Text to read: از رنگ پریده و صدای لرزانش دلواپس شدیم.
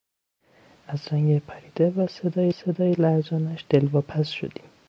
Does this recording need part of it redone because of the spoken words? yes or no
yes